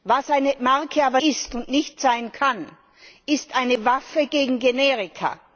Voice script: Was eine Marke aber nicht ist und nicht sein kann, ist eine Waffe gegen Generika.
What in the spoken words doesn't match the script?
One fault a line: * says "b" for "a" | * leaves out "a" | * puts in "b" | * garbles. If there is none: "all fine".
* leaves out "nicht"